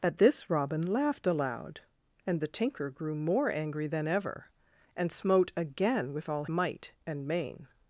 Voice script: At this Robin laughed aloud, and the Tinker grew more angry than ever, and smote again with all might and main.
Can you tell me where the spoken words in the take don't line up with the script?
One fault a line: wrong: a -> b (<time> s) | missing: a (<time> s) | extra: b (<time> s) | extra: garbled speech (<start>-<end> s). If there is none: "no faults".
no faults